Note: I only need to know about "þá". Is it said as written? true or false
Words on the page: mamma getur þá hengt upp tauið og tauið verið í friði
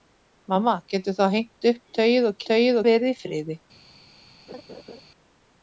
true